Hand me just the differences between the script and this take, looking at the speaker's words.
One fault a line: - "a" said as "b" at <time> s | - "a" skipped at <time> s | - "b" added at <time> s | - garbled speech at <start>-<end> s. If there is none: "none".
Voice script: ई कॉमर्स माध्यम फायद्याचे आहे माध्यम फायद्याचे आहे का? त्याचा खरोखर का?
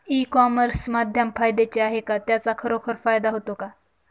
- "माध्यम फायद्याचे आहे" skipped at 2.0 s
- "फायदा होतो" added at 3.0 s